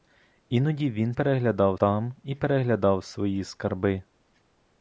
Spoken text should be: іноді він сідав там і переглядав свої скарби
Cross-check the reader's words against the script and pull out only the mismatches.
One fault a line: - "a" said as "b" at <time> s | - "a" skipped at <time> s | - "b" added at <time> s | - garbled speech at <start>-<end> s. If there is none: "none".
- "сідав" said as "переглядав" at 1.1 s